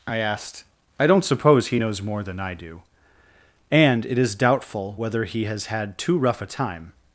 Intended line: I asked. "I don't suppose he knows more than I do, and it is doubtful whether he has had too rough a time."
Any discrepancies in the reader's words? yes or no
no